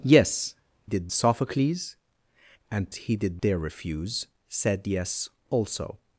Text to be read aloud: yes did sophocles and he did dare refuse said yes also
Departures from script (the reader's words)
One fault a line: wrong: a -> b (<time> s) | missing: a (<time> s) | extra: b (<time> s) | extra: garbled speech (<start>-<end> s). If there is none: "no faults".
no faults